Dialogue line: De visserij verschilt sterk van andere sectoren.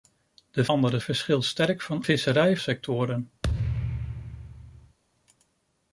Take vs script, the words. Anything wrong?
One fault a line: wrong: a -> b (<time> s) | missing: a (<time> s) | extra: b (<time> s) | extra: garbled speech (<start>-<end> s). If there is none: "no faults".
wrong: visserij -> andere (0.7 s)
wrong: andere -> visserij (2.0 s)